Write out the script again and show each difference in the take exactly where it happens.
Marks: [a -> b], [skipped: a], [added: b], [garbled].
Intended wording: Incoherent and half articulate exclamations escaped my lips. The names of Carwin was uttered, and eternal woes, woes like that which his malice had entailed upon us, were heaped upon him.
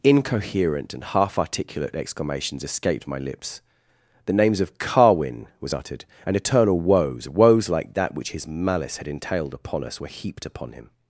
Incoherent and half articulate exclamations escaped my lips. The names of Carwin was uttered, and eternal woes, woes like that which his malice had entailed upon us, were heaped upon him.